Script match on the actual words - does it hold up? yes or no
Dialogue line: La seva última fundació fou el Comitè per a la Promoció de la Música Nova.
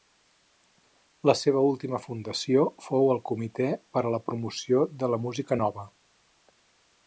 yes